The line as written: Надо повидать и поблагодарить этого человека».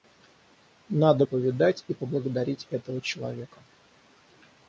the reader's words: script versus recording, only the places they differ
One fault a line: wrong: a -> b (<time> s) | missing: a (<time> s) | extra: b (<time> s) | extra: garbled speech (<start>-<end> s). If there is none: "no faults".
no faults